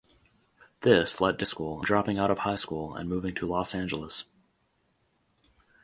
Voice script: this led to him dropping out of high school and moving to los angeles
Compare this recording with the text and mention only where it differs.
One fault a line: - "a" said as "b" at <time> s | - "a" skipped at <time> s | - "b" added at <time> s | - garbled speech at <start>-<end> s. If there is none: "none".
- "him" said as "school" at 1.4 s